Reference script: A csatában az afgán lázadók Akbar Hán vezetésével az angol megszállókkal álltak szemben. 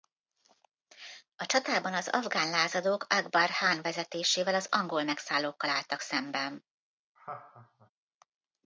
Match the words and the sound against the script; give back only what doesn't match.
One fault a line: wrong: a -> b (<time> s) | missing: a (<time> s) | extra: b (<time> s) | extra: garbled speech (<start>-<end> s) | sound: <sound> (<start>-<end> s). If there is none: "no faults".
sound: laugh (7.2-7.9 s)